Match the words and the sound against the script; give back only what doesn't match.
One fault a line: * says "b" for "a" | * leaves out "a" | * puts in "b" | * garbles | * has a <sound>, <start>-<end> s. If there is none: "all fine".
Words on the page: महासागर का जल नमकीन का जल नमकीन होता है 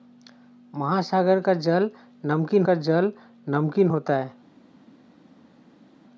all fine